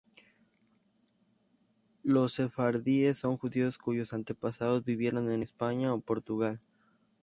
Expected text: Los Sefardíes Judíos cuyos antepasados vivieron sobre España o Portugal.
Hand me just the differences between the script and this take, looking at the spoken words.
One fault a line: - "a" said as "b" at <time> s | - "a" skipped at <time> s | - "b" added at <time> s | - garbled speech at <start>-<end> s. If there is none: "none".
- "son" added at 3.2 s
- "sobre" said as "en" at 5.3 s